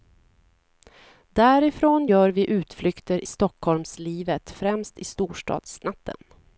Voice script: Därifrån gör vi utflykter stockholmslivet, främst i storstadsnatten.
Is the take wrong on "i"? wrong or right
right